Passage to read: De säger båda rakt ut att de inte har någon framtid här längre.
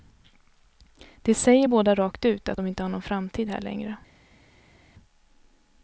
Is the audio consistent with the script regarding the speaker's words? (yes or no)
yes